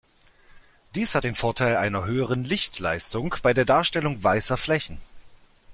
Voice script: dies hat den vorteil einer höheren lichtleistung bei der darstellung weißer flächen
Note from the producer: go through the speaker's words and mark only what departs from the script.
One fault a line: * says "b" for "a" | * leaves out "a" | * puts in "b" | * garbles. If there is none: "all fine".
all fine